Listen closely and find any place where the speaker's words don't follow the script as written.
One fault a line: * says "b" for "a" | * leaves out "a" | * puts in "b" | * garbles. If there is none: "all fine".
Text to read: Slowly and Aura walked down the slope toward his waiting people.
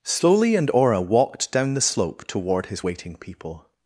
all fine